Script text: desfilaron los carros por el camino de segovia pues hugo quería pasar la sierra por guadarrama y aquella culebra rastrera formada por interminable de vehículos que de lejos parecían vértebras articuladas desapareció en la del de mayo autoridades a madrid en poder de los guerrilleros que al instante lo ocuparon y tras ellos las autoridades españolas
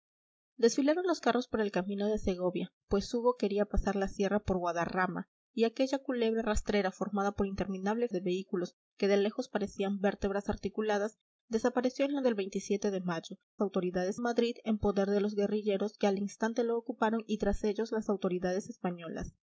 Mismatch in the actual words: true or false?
false